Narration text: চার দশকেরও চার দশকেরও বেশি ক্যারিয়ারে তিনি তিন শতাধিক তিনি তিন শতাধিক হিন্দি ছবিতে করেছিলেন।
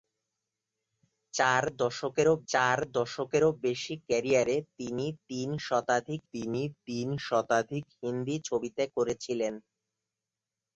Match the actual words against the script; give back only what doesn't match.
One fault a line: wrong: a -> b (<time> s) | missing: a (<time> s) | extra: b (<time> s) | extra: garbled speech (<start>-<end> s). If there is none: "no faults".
no faults